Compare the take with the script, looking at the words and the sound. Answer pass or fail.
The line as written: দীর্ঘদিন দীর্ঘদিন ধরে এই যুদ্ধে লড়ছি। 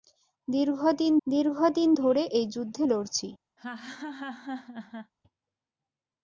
fail